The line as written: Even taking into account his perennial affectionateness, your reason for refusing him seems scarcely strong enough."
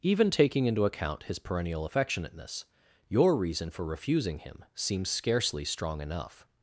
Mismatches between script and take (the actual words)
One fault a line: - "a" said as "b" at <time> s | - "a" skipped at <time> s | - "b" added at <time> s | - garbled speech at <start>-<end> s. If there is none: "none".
none